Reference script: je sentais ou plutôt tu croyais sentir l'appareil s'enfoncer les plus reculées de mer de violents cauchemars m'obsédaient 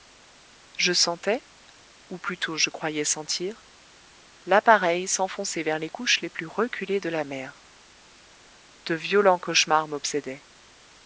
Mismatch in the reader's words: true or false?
true